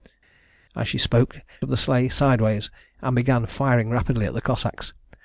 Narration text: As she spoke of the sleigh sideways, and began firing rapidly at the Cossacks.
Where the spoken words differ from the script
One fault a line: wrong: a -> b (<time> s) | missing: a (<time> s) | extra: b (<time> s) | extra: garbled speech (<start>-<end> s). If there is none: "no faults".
no faults